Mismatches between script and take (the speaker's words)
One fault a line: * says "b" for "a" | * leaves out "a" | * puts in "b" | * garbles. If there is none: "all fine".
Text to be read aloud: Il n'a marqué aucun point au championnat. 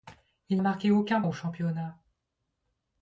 * leaves out "n'a"
* leaves out "point"